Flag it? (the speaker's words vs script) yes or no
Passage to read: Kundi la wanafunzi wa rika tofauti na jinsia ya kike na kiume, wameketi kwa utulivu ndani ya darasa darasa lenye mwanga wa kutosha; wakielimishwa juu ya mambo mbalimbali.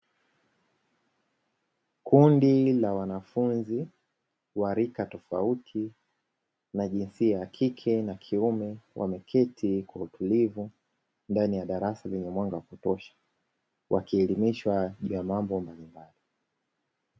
yes